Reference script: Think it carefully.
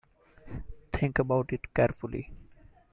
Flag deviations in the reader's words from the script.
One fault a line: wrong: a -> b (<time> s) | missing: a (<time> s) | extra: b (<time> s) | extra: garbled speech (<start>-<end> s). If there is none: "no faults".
extra: about (1.2 s)